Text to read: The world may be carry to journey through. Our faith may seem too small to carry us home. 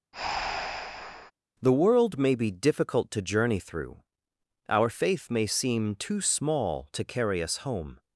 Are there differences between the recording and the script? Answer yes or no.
yes